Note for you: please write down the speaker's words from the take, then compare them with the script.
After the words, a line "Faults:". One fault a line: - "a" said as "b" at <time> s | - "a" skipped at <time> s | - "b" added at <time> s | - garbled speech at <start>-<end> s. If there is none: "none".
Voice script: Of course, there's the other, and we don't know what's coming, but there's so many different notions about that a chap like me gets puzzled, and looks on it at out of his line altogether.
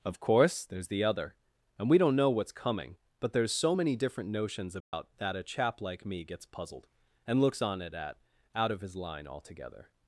Of course, there's the other, and we don't know what's coming, but there's so many different notions about that a chap like me gets puzzled, and looks on it at out of his line altogether.
Faults:
none